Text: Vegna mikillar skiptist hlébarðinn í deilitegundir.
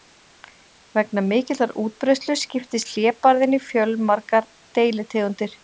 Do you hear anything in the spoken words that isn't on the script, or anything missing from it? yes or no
yes